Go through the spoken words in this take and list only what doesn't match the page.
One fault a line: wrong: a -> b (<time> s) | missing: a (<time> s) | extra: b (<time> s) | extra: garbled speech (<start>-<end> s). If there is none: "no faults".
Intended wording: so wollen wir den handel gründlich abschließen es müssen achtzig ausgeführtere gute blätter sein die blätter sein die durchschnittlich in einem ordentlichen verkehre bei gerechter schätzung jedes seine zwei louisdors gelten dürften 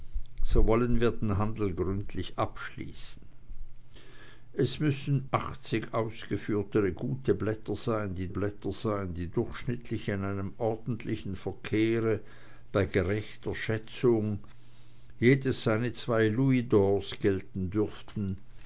no faults